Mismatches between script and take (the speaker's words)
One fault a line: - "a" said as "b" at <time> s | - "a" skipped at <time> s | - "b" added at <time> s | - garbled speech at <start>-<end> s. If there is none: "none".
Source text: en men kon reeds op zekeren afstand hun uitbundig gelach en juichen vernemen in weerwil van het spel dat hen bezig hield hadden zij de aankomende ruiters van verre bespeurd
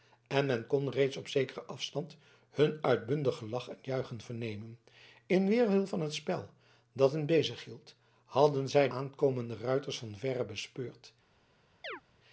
- "de" skipped at 8.9 s